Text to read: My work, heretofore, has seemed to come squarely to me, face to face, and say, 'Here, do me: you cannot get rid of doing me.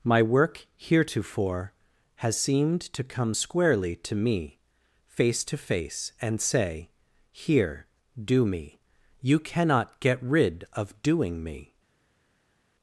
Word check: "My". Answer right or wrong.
right